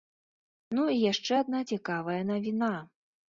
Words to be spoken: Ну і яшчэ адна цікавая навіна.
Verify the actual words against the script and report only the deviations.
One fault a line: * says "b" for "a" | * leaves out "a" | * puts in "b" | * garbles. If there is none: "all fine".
all fine